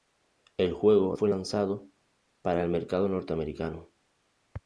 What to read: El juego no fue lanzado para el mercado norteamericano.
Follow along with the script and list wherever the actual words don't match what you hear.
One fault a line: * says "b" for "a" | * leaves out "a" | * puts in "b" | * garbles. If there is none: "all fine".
* leaves out "no"